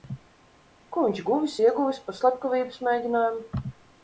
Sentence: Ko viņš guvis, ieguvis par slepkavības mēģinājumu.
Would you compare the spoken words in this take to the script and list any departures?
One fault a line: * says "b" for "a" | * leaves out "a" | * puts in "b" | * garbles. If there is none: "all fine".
all fine